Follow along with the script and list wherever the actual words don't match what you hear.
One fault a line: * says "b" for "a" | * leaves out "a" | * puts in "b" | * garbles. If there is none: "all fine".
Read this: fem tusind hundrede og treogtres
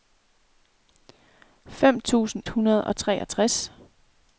all fine